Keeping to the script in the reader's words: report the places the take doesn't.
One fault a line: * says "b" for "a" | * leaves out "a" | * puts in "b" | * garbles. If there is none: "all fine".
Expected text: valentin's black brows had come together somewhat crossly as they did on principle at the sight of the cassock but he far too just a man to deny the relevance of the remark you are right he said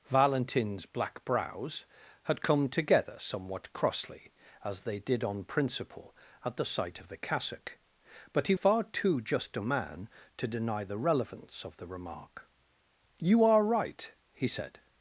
all fine